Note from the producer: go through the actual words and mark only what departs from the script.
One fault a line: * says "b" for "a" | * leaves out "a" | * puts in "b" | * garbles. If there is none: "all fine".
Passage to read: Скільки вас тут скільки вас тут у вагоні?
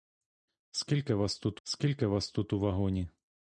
all fine